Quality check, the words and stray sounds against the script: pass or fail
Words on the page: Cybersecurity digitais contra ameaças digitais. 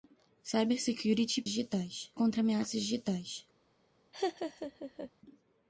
fail